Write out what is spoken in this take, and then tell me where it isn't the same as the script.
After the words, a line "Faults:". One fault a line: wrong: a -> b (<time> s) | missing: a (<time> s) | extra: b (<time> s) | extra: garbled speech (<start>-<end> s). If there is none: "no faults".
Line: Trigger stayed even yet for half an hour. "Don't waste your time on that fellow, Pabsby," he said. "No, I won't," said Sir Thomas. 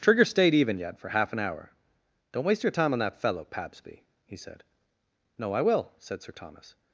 Trigger stayed even yet for half an hour. "Don't waste your time on that fellow, Pabsby," he said. "No, I will," said Sir Thomas.
Faults:
wrong: won't -> will (5.6 s)